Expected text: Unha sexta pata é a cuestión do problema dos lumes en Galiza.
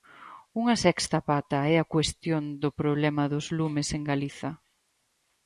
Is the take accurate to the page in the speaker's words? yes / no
yes